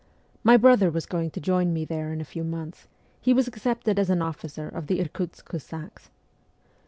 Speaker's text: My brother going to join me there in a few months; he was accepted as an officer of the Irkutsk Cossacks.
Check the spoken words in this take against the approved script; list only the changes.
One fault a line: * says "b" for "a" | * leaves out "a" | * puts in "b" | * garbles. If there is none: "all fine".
* puts in "was"